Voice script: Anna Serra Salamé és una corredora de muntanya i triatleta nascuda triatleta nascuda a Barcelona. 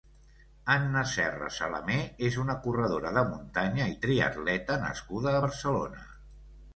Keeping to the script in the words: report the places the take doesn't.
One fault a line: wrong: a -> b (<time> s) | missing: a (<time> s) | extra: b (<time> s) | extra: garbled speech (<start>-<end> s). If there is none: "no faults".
missing: triatleta nascuda (5.3 s)